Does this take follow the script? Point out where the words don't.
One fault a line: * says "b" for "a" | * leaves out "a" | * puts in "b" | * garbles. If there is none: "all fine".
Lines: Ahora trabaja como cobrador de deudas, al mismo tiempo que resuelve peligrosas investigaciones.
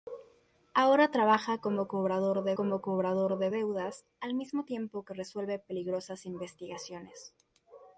* puts in "como cobrador de"